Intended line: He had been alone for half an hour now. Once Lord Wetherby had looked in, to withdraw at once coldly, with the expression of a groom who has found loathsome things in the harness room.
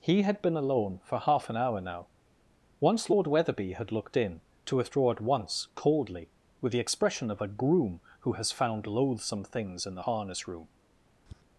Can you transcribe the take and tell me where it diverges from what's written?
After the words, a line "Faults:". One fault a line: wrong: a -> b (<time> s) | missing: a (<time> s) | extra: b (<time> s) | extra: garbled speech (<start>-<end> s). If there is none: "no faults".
He had been alone for half an hour now. Once Lord Wetherby had looked in, to withdraw at once coldly, with the expression of a groom who has found loathsome things in the harness room.
Faults:
no faults